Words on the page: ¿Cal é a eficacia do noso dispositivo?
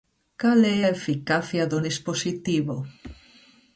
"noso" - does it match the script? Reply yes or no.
no